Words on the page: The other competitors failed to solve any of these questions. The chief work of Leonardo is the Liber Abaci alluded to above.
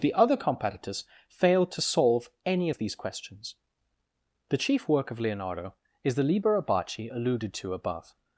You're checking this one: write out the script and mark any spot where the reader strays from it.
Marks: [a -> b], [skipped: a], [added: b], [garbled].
The other competitors failed to solve any of these questions. The chief work of Leonardo is the Liber Abaci alluded to above.